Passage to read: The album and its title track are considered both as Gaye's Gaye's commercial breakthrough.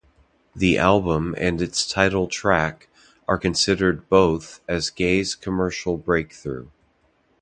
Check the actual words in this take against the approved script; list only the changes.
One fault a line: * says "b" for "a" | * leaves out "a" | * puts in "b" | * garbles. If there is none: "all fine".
* leaves out "Gaye's"